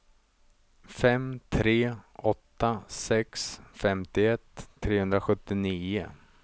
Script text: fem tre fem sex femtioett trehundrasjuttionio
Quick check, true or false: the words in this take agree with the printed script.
false